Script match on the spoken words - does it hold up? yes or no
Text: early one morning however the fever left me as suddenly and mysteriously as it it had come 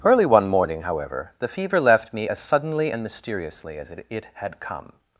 yes